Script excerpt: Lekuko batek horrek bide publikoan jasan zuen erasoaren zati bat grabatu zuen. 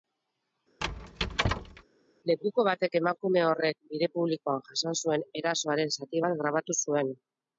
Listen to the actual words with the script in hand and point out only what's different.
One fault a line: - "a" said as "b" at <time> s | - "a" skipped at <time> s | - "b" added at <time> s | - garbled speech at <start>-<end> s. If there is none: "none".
- "emakume" added at 3.0 s